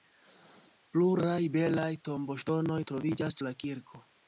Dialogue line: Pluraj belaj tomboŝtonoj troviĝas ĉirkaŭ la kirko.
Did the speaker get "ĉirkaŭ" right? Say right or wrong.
wrong